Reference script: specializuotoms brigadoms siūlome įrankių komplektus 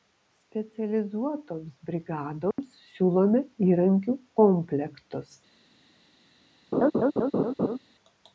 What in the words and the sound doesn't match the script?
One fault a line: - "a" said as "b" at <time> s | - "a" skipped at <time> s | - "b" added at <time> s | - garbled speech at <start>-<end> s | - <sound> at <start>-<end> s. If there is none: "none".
- dropout at 2.5-2.6 s
- laugh at 6.7-7.8 s